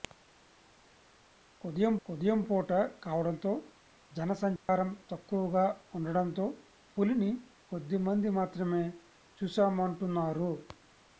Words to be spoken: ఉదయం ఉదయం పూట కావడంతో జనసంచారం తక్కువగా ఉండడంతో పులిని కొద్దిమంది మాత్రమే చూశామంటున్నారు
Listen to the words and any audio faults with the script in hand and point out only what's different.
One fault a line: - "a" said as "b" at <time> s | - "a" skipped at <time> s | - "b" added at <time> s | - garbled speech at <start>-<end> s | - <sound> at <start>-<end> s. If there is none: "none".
- dropout at 4.6-4.7 s